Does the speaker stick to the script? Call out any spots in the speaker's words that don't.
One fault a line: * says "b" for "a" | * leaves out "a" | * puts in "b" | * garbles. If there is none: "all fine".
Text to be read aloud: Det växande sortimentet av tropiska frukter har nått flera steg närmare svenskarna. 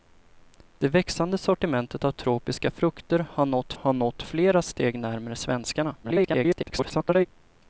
* puts in "har nått"
* garbles